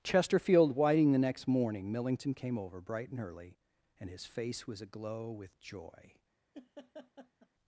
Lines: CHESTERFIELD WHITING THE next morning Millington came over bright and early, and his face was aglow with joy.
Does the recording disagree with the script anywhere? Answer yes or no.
no